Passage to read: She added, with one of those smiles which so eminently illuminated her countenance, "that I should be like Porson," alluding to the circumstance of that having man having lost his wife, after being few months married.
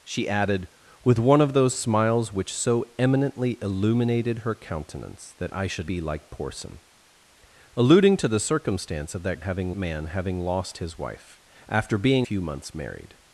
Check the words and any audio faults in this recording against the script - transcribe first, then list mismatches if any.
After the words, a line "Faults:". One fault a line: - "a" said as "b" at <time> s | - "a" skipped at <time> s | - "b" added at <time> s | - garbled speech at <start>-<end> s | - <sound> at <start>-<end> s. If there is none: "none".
She added, with one of those smiles which so eminently illuminated her countenance, "that I should be like Porson," alluding to the circumstance of that having man having lost his wife, after being few months married.
Faults:
none